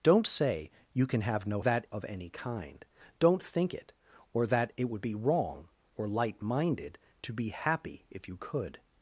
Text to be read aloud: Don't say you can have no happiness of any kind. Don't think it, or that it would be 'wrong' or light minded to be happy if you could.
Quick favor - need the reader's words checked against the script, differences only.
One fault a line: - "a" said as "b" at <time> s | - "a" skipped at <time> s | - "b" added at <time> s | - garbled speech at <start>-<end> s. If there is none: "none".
- "happiness" said as "that" at 1.6 s